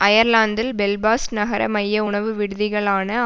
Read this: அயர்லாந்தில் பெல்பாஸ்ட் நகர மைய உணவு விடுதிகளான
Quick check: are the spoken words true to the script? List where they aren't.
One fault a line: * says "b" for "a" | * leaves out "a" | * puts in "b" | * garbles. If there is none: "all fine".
all fine